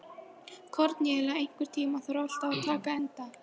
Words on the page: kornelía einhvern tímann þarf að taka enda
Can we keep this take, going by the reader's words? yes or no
no